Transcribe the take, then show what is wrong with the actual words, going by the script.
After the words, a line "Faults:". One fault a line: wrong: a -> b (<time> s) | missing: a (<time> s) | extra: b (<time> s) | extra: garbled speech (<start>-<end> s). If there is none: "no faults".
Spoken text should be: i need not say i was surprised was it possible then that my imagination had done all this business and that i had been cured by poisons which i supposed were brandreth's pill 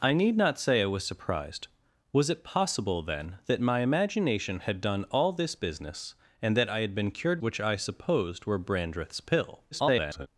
i need not say i was surprised was it possible then that my imagination had done all this business and that i had been cured which i supposed were brandreth's pill [garbled]
Faults:
missing: by poisons (7.4 s)
extra: garbled speech (9.7-10.3 s)